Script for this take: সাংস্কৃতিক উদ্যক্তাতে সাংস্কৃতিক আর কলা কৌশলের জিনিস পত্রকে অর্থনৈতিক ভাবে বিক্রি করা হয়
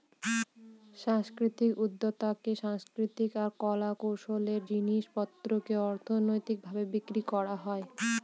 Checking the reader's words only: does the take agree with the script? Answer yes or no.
yes